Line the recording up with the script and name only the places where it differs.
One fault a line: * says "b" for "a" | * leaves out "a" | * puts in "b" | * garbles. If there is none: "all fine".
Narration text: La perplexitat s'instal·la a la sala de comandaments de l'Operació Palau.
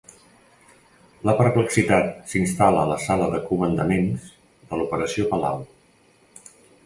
all fine